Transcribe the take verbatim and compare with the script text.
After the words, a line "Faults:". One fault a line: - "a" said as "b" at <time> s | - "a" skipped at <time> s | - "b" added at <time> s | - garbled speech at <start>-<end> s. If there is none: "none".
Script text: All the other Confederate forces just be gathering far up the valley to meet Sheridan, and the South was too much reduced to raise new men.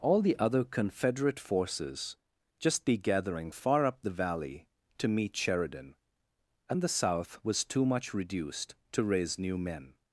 All the other Confederate forces just be gathering far up the valley to meet Sheridan, and the South was too much reduced to raise new men.
Faults:
none